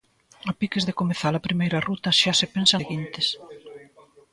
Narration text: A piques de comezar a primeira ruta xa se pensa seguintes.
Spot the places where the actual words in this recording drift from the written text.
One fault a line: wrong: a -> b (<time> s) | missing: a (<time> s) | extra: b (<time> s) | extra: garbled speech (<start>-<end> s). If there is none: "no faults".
no faults